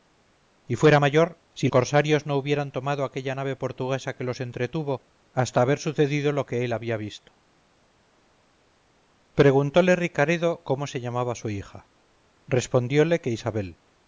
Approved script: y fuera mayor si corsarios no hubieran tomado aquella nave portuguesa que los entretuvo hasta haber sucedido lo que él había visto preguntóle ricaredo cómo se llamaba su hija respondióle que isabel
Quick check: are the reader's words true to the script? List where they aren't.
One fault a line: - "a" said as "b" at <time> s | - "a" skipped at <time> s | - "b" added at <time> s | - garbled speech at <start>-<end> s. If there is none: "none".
none